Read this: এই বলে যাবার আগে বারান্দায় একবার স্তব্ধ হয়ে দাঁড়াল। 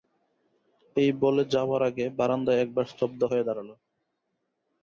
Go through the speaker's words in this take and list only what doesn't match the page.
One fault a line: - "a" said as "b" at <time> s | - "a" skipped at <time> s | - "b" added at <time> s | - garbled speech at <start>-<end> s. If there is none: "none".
none